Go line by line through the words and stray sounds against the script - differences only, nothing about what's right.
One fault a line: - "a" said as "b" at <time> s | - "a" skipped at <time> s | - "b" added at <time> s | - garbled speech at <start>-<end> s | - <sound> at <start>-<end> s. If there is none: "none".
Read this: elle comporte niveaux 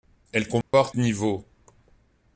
- dropout at 0.6-0.7 s